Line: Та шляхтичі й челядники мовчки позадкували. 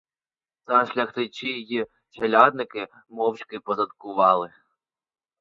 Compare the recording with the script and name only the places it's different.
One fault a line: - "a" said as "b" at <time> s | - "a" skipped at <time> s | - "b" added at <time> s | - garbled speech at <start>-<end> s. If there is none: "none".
none